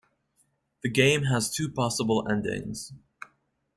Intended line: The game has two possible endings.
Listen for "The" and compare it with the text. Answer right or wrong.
right